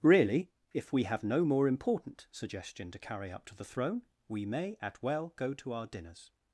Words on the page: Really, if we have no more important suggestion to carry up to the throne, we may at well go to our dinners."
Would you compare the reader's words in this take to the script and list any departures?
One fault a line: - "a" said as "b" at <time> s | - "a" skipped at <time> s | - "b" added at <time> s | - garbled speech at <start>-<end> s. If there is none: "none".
none